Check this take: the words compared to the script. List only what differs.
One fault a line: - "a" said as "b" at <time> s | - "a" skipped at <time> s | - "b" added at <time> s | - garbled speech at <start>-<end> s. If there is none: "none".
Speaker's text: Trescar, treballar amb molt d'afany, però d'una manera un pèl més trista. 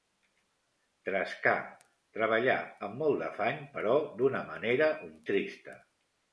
- "pèl més" skipped at 5.1 s